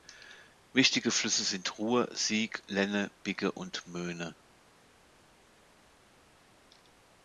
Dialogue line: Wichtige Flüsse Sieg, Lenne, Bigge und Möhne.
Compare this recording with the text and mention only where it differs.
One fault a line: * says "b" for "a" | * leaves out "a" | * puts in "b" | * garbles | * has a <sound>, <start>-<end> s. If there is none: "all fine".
* puts in "sind Ruhr"